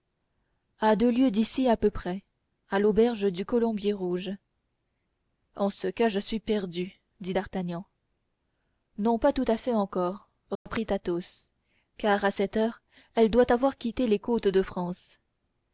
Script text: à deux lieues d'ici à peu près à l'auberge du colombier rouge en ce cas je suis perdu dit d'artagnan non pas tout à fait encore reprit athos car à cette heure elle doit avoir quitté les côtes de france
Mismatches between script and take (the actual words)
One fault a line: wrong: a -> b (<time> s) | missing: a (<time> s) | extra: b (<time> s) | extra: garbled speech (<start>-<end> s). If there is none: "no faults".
no faults